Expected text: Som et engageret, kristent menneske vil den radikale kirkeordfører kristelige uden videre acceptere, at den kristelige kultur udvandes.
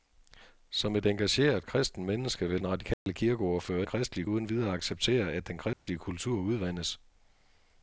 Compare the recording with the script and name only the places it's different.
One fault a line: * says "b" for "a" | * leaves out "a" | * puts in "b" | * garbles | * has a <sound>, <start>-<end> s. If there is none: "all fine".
* has a dropout, 2.9-3.1 s
* has a dropout, 5.7-5.9 s